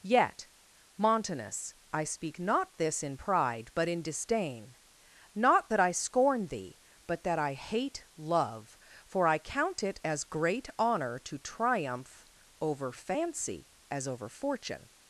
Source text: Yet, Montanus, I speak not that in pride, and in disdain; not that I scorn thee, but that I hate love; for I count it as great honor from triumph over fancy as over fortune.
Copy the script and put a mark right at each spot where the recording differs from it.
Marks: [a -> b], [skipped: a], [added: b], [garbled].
Yet, Montanus, I speak not [that -> this] in pride, [and -> but] in disdain; not that I scorn thee, but that I hate love; for I count it as great honor [from -> to] triumph over fancy as over fortune.